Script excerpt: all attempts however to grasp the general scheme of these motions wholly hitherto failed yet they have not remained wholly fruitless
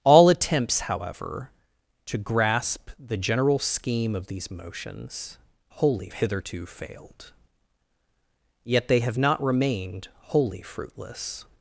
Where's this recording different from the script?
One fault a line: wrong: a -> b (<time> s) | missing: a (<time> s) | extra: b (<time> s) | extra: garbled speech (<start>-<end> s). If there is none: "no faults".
no faults